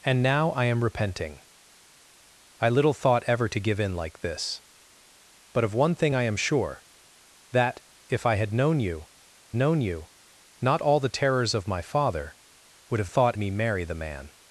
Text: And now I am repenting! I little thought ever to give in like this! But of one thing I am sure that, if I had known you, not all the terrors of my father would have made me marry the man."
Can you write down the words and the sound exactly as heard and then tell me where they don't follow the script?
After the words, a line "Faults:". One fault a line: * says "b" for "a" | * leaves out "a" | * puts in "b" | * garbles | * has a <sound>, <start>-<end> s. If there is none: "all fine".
And now I am repenting! I little thought ever to give in like this! But of one thing I am sure that, if I had known you known you, not all the terrors of my father would have thought me marry the man."
Faults:
* puts in "known you"
* says "thought" for "made"